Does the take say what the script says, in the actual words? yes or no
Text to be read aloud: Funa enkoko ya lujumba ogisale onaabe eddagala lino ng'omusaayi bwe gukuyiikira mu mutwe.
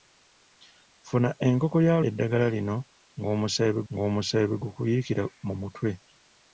no